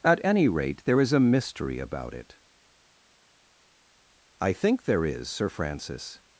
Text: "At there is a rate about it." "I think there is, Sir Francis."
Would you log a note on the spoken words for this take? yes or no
yes